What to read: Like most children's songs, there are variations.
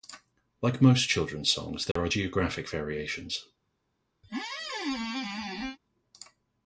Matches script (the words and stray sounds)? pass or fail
fail